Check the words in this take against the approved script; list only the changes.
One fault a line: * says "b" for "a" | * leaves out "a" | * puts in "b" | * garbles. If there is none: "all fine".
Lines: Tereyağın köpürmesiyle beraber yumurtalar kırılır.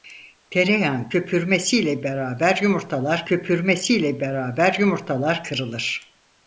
* puts in "köpürmesiyle beraber yumurtalar"